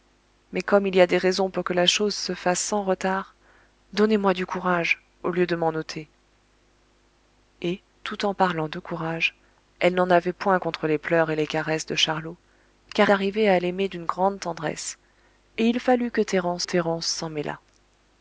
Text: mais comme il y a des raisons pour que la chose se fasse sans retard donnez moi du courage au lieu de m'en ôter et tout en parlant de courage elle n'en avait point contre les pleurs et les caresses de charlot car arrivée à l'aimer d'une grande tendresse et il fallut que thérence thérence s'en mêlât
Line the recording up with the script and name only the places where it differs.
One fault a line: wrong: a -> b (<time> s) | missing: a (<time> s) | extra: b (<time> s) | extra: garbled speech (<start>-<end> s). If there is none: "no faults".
no faults